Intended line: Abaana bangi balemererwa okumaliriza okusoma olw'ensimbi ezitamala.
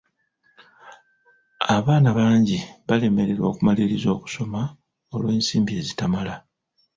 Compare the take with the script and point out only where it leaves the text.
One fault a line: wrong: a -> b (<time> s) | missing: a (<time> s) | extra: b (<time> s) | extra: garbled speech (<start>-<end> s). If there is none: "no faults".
no faults